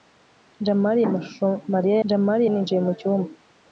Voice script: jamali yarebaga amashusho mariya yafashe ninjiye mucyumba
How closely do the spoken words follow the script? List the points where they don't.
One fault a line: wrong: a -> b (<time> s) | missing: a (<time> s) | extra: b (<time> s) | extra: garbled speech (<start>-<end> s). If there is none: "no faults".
missing: yarebaga (1.0 s)
wrong: yafashe -> jamali (2.1 s)